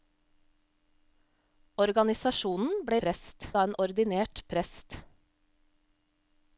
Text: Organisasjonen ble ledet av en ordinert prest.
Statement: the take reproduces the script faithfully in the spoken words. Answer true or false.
false